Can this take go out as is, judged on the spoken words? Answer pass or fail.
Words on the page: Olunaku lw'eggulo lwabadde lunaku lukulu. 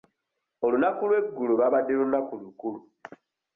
pass